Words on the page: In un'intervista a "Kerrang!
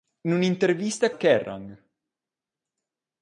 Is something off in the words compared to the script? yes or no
no